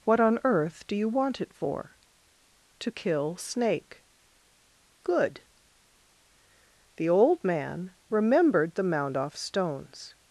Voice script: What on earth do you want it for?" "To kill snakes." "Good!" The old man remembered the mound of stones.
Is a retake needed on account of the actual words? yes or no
yes